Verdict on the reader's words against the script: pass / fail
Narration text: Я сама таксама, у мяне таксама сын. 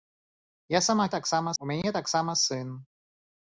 pass